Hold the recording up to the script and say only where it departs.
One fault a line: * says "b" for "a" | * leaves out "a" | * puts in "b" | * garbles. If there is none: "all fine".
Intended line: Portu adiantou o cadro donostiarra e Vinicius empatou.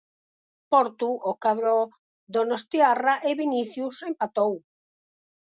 * leaves out "adiantou"